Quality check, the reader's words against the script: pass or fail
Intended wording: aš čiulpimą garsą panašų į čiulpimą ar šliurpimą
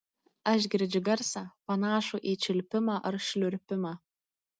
fail